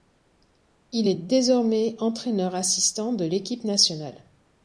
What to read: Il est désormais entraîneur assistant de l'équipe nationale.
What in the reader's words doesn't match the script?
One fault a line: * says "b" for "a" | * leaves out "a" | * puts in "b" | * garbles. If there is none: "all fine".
all fine